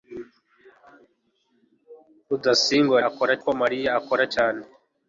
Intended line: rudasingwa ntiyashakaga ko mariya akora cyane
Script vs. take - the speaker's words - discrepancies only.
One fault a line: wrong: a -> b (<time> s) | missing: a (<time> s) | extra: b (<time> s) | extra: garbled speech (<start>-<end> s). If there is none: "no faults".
wrong: ntiyashakaga -> akora (3.1 s)